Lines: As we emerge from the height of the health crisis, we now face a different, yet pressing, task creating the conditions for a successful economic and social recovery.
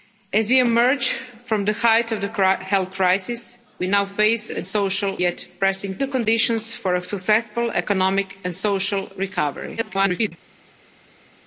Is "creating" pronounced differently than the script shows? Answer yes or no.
yes